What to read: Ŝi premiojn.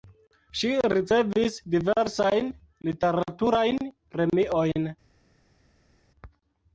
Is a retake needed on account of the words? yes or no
yes